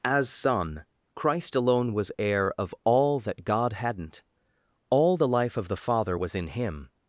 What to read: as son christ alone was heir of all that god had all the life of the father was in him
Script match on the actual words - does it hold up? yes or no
no